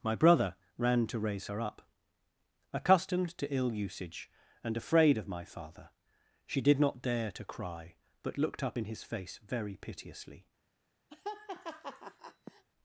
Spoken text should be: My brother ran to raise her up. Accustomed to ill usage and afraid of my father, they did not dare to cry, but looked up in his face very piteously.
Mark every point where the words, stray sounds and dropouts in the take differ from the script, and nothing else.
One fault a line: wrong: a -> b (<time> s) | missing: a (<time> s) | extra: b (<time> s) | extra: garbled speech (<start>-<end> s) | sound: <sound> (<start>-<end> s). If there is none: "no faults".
wrong: they -> she (6.5 s)
sound: laugh (11.1-12.6 s)